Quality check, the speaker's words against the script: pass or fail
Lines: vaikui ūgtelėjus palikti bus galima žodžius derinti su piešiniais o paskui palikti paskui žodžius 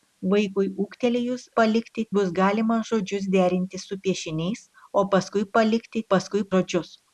pass